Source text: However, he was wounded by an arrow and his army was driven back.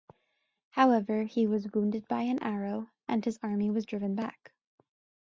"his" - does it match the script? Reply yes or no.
yes